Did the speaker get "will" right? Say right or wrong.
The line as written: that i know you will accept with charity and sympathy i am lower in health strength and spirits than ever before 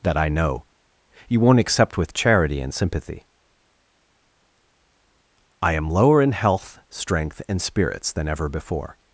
wrong